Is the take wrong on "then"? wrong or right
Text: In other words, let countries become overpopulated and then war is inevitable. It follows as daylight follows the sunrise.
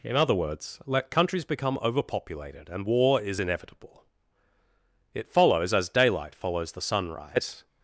wrong